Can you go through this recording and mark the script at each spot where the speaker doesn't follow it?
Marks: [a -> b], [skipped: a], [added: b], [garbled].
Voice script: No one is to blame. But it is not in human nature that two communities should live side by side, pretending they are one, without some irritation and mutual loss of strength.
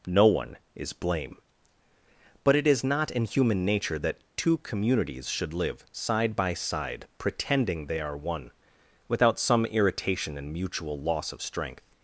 No one is [skipped: to] blame. But it is not in human nature that two communities should live side by side, pretending they are one, without some irritation and mutual loss of strength.